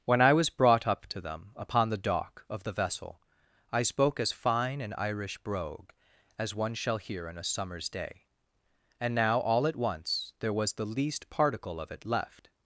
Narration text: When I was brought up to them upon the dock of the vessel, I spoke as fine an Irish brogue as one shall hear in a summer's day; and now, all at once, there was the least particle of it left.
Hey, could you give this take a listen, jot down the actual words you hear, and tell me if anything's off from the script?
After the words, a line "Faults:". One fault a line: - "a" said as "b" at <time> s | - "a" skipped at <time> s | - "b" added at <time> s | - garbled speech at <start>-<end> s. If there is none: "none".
When I was brought up to them upon the dock of the vessel, I spoke as fine an Irish brogue as one shall hear in a summer's day; and now, all at once, there was the least particle of it left.
Faults:
none